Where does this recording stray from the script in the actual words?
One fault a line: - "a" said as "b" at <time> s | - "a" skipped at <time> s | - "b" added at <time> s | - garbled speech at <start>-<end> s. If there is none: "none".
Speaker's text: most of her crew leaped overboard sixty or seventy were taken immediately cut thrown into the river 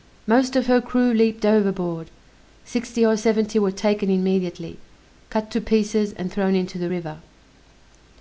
- "to pieces and" added at 5.5 s